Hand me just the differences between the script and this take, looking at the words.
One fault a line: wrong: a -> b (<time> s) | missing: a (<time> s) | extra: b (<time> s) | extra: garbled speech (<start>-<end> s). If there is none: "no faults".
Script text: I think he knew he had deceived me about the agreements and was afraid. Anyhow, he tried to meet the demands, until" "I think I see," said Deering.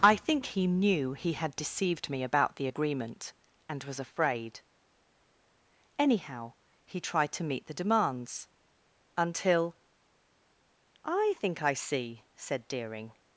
wrong: agreements -> agreement (2.6 s)